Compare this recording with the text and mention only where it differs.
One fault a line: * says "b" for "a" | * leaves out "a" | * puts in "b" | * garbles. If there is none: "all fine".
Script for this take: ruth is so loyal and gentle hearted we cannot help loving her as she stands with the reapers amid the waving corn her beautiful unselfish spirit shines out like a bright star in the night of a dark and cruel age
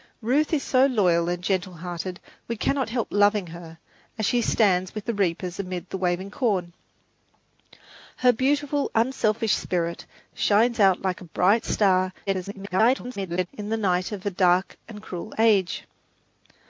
* garbles